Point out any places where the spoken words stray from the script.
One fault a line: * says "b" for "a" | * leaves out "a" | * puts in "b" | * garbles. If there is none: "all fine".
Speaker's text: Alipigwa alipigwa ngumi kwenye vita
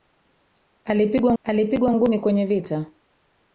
all fine